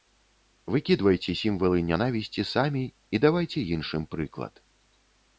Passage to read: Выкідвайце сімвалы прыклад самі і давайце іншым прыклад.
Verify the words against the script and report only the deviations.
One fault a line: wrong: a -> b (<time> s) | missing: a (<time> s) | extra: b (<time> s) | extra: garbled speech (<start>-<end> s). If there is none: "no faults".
wrong: прыклад -> нянавісці (1.9 s)